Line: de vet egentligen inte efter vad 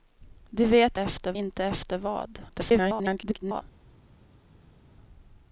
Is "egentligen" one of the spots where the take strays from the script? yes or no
yes